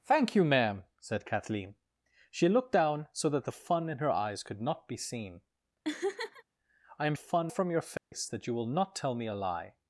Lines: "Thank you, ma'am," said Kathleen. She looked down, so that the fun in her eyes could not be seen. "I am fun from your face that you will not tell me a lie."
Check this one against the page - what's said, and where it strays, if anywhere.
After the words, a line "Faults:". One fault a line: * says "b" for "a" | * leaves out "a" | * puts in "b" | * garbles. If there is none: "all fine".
"Thank you, ma'am," said Kathleen. She looked down, so that the fun in her eyes could not be seen. "I am fun from your face that you will not tell me a lie."
Faults:
all fine